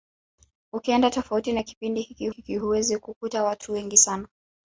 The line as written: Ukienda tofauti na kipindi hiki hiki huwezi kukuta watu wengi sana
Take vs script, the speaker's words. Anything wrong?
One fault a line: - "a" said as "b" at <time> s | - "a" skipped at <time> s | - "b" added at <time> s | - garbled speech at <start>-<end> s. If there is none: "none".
none